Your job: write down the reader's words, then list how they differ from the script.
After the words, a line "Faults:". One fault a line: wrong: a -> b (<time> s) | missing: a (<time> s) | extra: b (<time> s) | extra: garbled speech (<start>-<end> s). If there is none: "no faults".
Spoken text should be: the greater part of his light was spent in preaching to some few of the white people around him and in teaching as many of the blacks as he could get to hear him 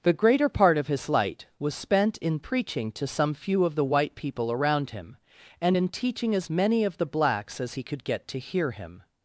the greater part of his light was spent in preaching to some few of the white people around him and in teaching as many of the blacks as he could get to hear him
Faults:
no faults